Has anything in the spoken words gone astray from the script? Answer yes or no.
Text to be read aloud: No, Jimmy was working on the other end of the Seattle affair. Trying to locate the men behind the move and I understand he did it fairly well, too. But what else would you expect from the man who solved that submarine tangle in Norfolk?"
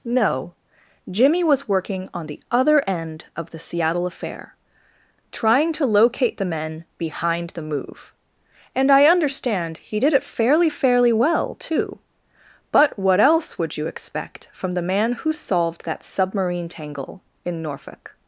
yes